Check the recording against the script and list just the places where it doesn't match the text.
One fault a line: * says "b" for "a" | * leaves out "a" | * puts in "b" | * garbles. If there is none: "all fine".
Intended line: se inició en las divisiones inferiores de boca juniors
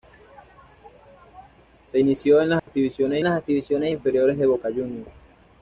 * puts in "las divisiones"